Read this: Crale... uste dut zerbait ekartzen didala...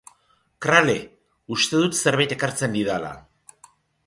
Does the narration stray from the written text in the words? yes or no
no